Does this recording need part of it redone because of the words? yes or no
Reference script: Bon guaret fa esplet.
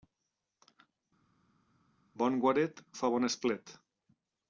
yes